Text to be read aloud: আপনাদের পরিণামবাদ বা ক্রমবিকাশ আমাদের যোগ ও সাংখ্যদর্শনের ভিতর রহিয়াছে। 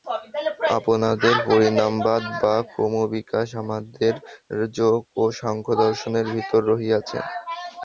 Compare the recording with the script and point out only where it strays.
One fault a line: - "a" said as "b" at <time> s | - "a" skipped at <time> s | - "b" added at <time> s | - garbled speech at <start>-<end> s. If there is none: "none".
none